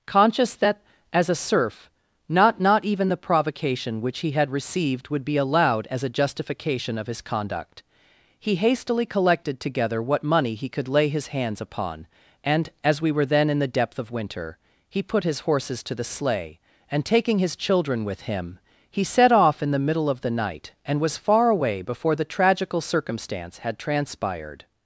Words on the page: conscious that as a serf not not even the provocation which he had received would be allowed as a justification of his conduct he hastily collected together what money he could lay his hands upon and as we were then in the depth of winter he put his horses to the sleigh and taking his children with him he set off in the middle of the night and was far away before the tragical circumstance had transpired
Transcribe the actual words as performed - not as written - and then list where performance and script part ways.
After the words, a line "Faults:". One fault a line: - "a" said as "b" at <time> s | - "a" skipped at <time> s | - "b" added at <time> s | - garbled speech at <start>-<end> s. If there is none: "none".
conscious that as a serf not not even the provocation which he had received would be allowed as a justification of his conduct he hastily collected together what money he could lay his hands upon and as we were then in the depth of winter he put his horses to the sleigh and taking his children with him he set off in the middle of the night and was far away before the tragical circumstance had transpired
Faults:
none